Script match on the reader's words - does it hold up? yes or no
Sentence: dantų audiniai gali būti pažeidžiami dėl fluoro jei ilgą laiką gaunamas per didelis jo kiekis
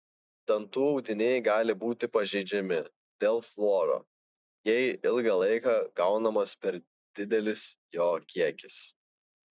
yes